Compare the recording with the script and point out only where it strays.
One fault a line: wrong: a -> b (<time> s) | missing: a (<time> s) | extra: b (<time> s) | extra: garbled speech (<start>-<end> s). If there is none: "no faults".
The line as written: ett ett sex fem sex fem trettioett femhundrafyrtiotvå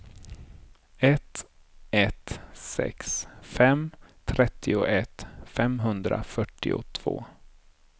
missing: sex fem (3.9 s)